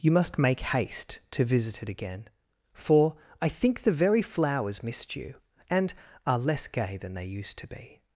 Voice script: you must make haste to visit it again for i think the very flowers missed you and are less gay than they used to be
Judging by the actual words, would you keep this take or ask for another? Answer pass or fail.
pass